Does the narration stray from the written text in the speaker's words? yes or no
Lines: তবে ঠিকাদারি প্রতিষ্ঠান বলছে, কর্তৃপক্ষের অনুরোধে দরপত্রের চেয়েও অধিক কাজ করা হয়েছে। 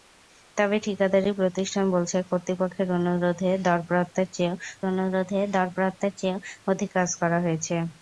yes